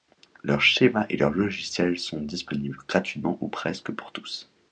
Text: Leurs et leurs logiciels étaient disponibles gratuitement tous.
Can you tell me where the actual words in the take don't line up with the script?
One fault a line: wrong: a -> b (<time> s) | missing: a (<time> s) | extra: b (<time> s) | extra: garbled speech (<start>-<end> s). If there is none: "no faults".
extra: schémas (0.6 s)
wrong: étaient -> sont (2.0 s)
extra: ou presque pour (3.4 s)